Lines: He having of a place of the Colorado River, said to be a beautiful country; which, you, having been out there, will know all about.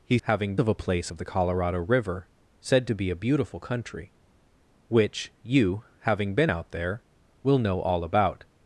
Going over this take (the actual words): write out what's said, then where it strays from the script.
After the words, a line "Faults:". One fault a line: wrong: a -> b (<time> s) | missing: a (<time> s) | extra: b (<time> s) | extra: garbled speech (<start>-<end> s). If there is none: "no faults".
He having of a place of the Colorado River, said to be a beautiful country; which, you, having been out there, will know all about.
Faults:
no faults